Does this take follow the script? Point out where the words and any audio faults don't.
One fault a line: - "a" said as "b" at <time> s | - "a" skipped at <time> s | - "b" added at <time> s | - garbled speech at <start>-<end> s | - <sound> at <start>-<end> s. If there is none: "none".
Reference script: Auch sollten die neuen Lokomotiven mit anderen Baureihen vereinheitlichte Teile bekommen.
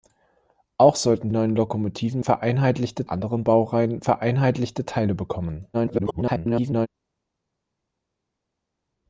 - "die" skipped at 1.3 s
- "mit" said as "vereinheitlichte" at 2.2 s
- garbled speech at 5.7-6.9 s